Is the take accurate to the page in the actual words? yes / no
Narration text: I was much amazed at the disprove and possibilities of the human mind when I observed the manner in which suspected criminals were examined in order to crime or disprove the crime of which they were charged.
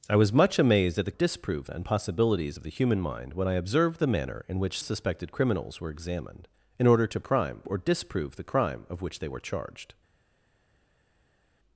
yes